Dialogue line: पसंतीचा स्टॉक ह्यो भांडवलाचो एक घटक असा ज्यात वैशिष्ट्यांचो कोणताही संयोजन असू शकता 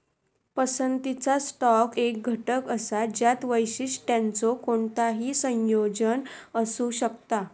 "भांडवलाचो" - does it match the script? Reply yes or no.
no